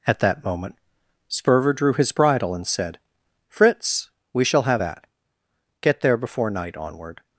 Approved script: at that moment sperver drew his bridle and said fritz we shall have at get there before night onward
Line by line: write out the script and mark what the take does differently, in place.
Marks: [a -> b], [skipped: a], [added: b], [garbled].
at that moment sperver drew his bridle and said fritz we shall have at get there before night onward